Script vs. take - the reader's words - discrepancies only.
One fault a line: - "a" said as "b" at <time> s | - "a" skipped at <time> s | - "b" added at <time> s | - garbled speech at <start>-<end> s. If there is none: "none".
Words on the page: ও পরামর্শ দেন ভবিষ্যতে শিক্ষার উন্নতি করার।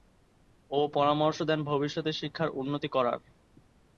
none